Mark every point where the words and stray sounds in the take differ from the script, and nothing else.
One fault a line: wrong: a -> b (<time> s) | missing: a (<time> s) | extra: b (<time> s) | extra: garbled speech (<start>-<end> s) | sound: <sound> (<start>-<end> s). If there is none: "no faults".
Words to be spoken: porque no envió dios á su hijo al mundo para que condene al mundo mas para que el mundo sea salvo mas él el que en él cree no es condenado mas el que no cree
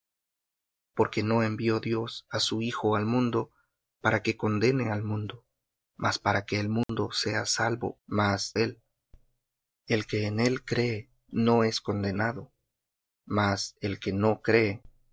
sound: dropout (6.8-6.9 s)